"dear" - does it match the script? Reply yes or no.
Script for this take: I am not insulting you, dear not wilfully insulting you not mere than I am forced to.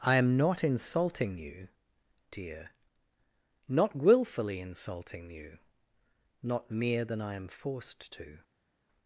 yes